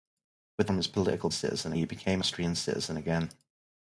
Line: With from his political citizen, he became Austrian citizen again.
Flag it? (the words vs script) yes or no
no